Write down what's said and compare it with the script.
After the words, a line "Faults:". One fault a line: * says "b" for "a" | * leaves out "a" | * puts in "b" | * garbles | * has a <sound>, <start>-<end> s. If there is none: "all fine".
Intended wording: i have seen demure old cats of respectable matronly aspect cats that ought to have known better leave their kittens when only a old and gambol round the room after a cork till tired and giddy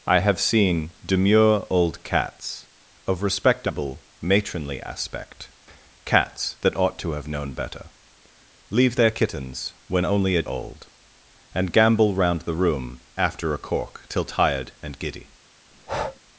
i have seen demure old cats of respectable matronly aspect cats that ought to have known better leave their kittens when only a old and gambol round the room after a cork till tired and giddy
Faults:
* has a breath, 15.7-16.2 s